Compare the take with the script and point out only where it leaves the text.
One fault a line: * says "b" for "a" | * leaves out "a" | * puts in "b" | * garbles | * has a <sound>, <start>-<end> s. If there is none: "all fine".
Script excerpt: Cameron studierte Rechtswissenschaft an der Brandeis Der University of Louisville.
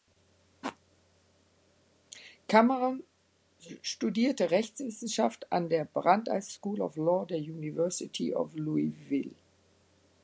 * puts in "School of Law"